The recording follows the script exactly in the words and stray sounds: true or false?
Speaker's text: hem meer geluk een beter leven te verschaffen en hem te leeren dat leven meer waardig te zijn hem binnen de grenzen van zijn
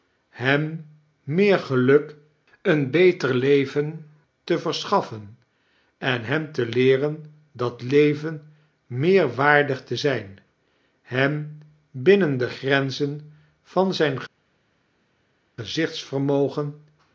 true